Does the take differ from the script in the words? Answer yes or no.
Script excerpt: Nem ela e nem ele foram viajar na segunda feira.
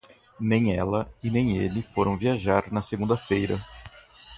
no